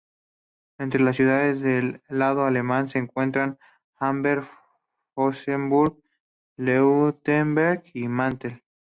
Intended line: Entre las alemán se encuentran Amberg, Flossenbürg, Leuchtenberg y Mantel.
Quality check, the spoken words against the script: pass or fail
fail